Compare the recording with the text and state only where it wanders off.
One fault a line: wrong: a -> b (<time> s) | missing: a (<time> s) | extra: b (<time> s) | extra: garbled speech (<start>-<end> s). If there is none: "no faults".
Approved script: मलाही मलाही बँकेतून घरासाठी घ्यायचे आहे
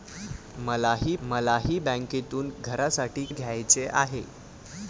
no faults